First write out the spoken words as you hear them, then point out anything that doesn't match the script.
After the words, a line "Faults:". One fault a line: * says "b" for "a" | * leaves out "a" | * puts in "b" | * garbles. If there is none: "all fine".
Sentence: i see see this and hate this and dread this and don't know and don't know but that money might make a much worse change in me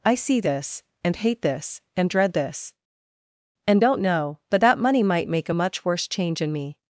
i see this and hate this and dread this and don't know but that money might make a much worse change in me
Faults:
* leaves out "see"
* leaves out "and don't know"